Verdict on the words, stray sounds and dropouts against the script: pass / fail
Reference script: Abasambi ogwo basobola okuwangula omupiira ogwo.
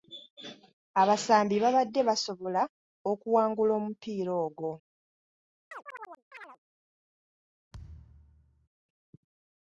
fail